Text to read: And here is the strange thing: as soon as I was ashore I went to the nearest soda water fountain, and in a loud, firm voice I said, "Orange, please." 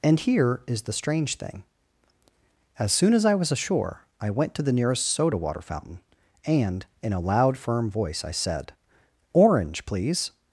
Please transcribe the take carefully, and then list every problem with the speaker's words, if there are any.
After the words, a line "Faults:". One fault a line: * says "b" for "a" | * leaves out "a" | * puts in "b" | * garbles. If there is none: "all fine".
And here is the strange thing: as soon as I was ashore I went to the nearest soda water fountain, and in a loud, firm voice I said, "Orange, please."
Faults:
all fine